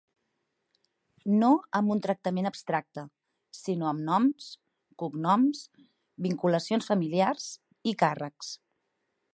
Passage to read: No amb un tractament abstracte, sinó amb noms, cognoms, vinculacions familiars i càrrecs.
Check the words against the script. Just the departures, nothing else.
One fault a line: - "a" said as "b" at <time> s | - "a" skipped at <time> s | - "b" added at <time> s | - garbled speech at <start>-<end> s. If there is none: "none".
none